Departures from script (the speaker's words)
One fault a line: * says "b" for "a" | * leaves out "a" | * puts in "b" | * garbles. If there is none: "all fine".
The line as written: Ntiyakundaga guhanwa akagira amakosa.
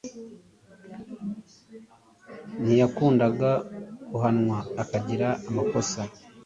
all fine